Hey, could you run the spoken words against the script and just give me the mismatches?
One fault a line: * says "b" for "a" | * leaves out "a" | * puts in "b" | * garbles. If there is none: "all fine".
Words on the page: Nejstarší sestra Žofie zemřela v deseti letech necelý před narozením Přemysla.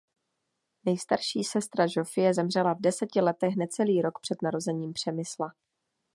* puts in "rok"